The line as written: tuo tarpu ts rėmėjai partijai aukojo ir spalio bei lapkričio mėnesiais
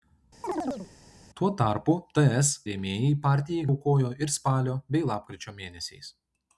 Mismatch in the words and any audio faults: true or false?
true